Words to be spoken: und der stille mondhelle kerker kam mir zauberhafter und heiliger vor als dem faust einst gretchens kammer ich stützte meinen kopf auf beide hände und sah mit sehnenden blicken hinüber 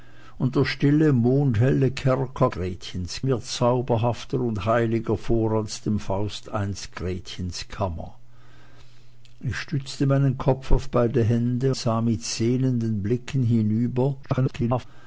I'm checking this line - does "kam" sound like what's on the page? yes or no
no